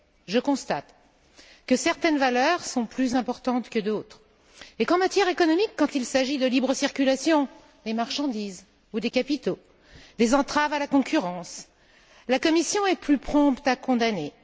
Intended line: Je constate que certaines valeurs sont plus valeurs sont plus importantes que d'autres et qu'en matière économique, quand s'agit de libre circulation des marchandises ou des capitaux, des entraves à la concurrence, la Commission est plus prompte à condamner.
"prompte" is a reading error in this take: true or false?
false